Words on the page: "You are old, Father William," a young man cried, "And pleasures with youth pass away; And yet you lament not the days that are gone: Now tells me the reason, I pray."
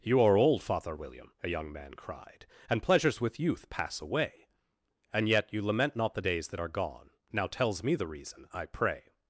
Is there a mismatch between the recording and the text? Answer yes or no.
no